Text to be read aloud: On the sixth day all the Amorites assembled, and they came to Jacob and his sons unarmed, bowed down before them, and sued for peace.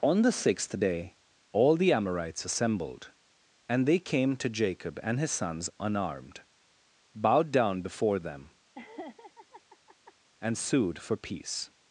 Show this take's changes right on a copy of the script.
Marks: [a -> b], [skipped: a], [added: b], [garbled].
On the sixth day all the Amorites assembled, and they came to Jacob and his sons unarmed, bowed down before them, and sued for peace.